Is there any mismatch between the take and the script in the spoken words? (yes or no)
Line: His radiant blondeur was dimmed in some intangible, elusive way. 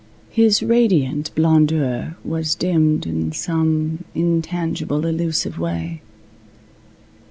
no